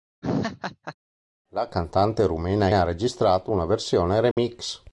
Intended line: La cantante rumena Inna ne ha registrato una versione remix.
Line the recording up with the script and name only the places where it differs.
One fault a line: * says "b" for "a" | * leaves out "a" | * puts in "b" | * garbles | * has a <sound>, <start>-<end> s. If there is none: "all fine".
* has a laugh, 0.2-0.9 s
* leaves out "Inna ne"
* has a dropout, 4.3-4.4 s